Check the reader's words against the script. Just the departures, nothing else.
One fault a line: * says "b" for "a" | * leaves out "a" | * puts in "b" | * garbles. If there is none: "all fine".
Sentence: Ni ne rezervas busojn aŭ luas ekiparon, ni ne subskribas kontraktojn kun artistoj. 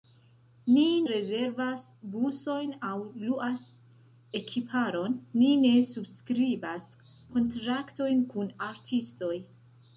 * leaves out "ne"